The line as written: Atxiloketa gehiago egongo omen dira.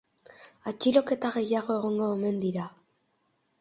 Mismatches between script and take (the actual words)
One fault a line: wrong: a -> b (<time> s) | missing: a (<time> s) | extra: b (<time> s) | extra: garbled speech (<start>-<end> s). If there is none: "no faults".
no faults